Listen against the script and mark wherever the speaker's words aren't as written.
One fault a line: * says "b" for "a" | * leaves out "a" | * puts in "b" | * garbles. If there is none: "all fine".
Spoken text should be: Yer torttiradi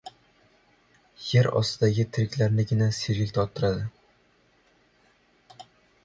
* puts in "ostidagi tiriklarnigina sergak"